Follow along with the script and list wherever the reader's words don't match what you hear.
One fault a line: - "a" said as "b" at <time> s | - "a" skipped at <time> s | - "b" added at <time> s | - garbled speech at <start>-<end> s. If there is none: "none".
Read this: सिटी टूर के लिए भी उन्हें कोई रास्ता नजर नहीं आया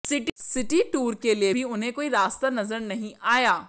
none